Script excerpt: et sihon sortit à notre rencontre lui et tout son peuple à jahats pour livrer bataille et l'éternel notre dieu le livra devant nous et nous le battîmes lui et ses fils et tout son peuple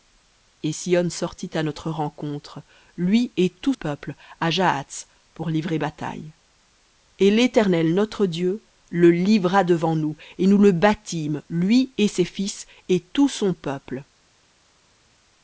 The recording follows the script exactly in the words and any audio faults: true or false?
false